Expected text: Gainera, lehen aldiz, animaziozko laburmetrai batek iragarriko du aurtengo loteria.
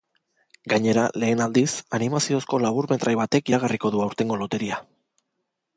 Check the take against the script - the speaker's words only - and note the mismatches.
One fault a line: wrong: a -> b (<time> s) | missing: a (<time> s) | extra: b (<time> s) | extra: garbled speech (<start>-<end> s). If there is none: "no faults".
no faults